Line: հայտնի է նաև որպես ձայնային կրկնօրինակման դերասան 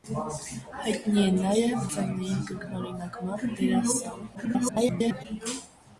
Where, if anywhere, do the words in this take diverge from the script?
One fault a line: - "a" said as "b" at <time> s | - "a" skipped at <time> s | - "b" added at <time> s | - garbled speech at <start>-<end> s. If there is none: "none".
- "որպես" skipped at 1.8 s
- garbled speech at 4.3-5.2 s